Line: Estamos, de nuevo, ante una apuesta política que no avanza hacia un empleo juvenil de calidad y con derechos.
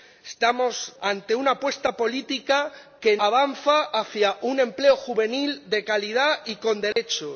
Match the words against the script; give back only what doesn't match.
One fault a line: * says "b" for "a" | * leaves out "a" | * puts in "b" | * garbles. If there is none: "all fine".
* leaves out "de nuevo"
* leaves out "no"